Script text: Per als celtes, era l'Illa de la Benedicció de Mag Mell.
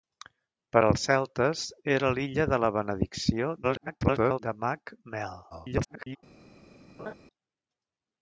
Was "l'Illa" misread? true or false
false